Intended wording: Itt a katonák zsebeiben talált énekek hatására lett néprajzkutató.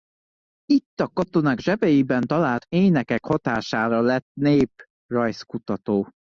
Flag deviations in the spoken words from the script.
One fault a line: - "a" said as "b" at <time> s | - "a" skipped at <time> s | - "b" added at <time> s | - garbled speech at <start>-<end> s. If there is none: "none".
none